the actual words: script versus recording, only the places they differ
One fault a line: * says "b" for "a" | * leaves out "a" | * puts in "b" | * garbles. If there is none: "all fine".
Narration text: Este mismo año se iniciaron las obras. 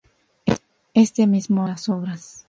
* leaves out "año se iniciaron"